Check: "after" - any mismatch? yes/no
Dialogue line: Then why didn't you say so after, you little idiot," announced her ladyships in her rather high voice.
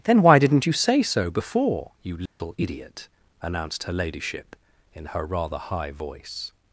yes